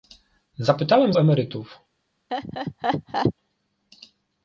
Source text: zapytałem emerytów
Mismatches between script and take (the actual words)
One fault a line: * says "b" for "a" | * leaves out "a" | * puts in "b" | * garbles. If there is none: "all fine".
all fine